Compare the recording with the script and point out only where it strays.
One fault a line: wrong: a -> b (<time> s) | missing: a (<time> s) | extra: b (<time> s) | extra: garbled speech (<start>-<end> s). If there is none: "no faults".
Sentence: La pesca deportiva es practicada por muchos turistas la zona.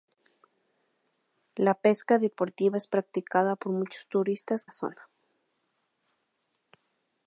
no faults